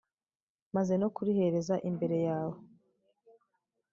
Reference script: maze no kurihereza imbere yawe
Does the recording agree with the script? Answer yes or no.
yes